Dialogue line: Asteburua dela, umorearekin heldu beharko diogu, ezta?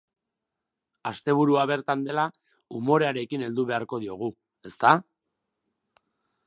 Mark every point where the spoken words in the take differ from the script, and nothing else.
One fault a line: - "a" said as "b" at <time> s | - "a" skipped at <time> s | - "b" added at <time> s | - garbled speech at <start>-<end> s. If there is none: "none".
- "bertan" added at 1.7 s